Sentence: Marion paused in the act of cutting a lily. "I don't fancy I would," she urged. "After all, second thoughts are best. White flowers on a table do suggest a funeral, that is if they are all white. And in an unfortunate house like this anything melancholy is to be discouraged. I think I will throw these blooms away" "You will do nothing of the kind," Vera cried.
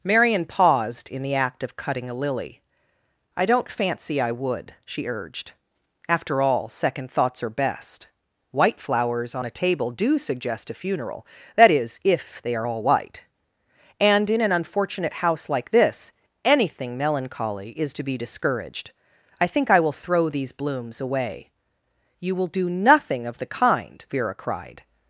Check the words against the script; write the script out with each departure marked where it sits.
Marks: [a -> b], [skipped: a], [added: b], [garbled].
Marion paused in the act of cutting a lily. "I don't fancy I would," she urged. "After all, second thoughts are best. White flowers on a table do suggest a funeral, that is if they are all white. And in an unfortunate house like this anything melancholy is to be discouraged. I think I will throw these blooms away" "You will do nothing of the kind," Vera cried.